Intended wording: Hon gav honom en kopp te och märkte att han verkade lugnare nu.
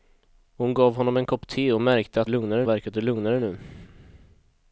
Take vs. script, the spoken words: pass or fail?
fail